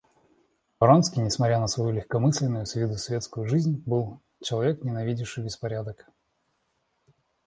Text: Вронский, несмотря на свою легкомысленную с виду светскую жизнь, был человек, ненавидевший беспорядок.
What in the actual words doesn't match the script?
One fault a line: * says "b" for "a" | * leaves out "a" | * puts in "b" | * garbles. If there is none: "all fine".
all fine